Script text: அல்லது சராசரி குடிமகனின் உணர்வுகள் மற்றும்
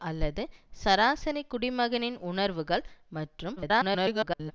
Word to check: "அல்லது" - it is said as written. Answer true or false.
true